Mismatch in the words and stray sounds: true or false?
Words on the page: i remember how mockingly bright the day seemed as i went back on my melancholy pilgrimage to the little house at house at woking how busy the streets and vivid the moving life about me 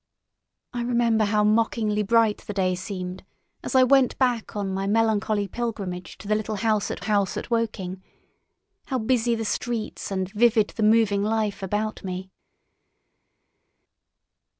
false